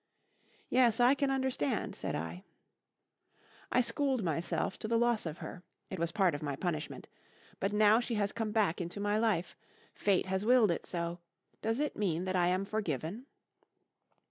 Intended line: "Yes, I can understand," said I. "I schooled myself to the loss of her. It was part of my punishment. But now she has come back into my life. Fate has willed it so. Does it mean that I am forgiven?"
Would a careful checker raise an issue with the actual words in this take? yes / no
no